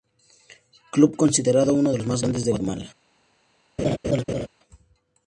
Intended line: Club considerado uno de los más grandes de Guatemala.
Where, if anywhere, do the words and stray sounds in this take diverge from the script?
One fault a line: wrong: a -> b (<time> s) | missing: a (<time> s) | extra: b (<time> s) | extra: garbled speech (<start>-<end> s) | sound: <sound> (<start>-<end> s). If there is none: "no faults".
sound: laugh (3.8-4.5 s)